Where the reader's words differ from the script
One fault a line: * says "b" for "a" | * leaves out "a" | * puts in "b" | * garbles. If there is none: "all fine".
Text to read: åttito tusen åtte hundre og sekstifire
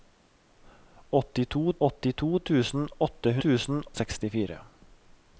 * puts in "åttito"
* says "tusen" for "hundre"